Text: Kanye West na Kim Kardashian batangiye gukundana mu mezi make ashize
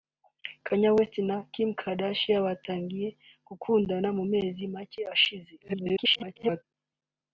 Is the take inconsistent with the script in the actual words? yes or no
yes